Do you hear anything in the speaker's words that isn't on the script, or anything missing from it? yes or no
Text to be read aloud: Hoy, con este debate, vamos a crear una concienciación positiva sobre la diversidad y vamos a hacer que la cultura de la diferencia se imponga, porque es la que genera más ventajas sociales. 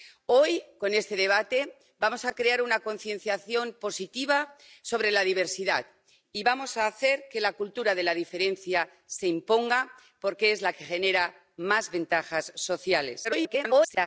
yes